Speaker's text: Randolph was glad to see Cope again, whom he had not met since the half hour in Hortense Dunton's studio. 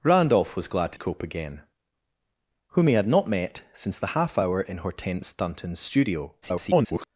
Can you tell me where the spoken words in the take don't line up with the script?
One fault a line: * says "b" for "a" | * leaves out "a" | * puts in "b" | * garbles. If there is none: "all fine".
* leaves out "see"
* garbles